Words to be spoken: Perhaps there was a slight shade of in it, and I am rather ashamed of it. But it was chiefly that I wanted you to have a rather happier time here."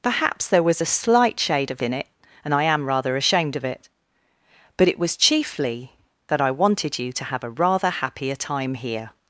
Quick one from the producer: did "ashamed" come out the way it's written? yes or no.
yes